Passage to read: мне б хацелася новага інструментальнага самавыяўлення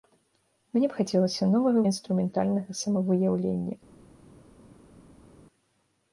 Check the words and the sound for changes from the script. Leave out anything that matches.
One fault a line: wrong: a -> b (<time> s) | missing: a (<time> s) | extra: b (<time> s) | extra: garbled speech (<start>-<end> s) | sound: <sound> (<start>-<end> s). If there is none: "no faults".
no faults